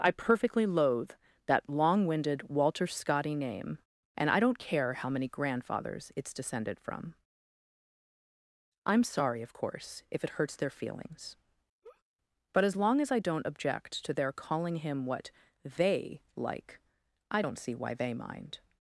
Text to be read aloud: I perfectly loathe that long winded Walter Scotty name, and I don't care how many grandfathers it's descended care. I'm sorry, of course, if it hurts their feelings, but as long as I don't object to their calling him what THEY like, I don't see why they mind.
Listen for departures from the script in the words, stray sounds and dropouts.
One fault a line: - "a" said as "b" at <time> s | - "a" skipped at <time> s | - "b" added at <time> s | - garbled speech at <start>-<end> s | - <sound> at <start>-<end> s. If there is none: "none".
- "care" said as "from" at 6.8 s
- laugh at 11.8-12.0 s